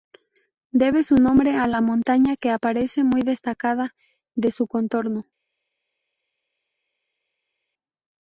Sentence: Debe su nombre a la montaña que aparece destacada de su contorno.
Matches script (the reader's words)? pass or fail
fail